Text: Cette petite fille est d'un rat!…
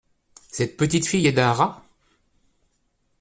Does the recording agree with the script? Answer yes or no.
yes